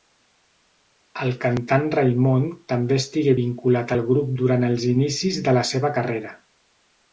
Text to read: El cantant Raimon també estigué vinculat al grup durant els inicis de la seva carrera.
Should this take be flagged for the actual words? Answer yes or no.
no